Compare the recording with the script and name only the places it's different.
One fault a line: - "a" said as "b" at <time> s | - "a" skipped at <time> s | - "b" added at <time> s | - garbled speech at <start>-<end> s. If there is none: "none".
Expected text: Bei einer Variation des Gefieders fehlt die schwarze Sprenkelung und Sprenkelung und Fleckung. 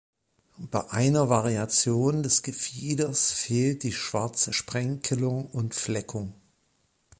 - "Sprenkelung und" skipped at 5.7 s